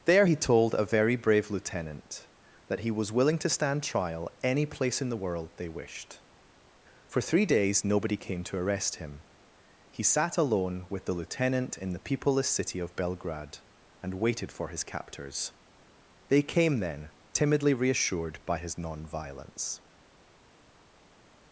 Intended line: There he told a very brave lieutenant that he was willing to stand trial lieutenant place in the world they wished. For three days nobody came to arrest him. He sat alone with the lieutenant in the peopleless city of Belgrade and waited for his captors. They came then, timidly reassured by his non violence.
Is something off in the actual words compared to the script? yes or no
yes